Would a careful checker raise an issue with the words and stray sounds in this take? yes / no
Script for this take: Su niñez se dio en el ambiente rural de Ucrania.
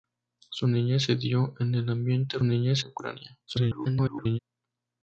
yes